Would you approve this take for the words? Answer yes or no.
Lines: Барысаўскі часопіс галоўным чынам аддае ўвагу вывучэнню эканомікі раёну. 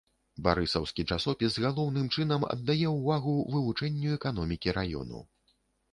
yes